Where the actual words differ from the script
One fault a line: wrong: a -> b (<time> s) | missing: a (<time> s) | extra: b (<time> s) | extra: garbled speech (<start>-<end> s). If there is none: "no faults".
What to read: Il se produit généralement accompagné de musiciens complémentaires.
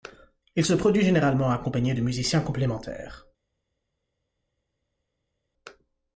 no faults